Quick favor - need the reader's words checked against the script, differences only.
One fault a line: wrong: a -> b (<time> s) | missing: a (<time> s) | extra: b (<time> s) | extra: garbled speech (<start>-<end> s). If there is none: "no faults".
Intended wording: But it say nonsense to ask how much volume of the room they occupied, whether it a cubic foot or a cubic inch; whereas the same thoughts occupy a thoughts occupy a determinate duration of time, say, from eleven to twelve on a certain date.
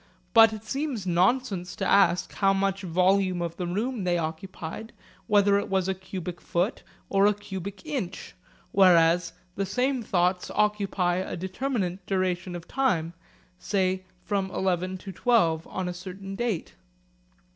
wrong: say -> seems (0.6 s)
extra: was (5.7 s)
missing: thoughts occupy a (11.4 s)